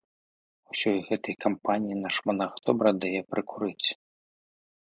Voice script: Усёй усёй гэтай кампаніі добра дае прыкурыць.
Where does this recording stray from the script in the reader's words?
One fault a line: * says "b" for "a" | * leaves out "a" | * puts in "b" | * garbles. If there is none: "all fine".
* leaves out "усёй"
* puts in "наш манах"